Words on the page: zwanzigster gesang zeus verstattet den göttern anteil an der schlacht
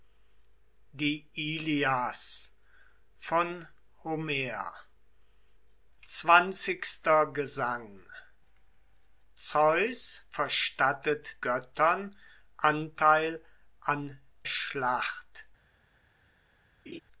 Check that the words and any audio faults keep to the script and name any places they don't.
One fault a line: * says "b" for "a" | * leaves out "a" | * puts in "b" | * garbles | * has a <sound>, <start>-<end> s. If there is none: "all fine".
* leaves out "den"
* leaves out "der"
* has a laugh, 16.9-17.0 s